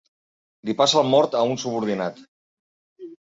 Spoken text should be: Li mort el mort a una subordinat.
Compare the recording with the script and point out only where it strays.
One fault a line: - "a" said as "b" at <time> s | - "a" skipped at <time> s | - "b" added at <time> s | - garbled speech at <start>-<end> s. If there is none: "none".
- "mort" said as "passa" at 0.8 s
- "una" said as "un" at 1.5 s